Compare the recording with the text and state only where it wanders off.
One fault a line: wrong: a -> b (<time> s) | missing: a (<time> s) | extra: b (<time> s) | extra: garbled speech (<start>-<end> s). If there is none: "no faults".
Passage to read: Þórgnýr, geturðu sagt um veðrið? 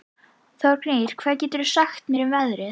extra: hvað (1.2 s)
extra: mér (2.1 s)